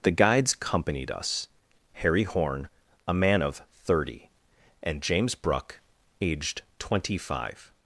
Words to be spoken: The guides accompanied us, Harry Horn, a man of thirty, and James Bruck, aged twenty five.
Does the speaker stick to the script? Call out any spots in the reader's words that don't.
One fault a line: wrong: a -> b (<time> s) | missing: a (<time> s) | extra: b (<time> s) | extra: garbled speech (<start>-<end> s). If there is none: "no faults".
no faults